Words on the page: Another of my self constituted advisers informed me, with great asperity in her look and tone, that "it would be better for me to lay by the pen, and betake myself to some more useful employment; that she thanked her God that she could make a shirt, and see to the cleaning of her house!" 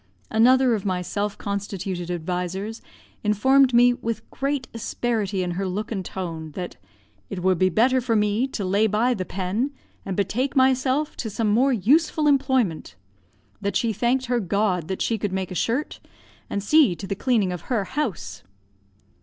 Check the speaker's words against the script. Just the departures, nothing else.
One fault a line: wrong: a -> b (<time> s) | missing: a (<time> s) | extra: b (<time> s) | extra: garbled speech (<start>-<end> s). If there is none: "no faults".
no faults